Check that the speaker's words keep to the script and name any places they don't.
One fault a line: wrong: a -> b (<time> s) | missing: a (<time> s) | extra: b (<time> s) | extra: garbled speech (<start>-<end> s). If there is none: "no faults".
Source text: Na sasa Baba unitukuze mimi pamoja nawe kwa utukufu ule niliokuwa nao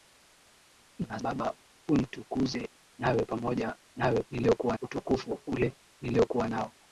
missing: sasa (1.2 s)
wrong: mimi -> nawe (3.0 s)
wrong: kwa -> niliokuwa (4.3 s)